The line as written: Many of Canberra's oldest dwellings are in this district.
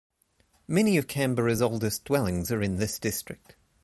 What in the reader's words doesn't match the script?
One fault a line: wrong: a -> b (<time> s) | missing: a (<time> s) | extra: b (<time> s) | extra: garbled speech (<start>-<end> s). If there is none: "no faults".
no faults